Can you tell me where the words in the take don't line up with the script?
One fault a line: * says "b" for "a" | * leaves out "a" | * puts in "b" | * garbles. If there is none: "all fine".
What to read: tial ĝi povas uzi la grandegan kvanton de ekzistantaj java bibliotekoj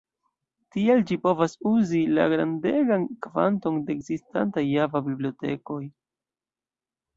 all fine